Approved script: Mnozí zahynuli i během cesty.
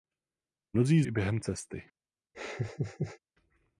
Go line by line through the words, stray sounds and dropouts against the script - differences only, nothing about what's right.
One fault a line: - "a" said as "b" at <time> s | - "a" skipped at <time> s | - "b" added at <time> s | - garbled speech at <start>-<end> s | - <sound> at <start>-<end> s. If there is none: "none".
- "zahynuli" skipped at 1.0 s
- laugh at 2.3-3.2 s